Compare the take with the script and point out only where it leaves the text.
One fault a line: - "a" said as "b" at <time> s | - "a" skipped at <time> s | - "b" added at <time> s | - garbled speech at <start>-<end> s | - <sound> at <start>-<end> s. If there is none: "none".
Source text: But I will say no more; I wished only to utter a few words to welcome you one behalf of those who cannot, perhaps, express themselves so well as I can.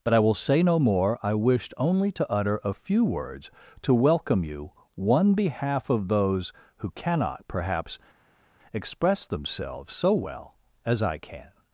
none